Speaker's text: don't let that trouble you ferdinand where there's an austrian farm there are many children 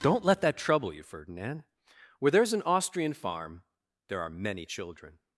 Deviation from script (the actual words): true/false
false